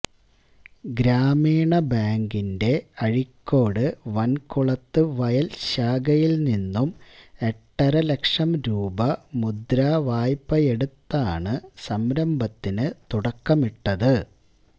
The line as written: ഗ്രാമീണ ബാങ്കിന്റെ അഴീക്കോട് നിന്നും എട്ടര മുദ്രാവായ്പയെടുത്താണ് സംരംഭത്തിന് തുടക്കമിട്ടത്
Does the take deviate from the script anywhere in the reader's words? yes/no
yes